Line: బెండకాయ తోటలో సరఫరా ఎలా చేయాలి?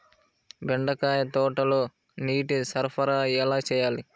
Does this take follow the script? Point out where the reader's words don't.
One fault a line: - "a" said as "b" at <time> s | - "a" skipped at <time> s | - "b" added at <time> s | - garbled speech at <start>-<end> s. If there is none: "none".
- "నీటి" added at 2.2 s